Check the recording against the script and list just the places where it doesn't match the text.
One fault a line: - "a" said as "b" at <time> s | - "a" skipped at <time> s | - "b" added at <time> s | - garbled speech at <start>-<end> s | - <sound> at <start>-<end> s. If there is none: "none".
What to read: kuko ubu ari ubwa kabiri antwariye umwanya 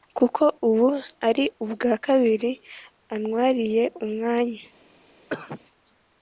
- cough at 5.3-5.6 s